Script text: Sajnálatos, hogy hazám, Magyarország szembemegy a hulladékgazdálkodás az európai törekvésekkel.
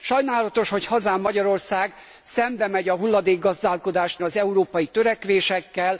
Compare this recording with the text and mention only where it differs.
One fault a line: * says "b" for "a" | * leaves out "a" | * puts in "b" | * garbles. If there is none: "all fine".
all fine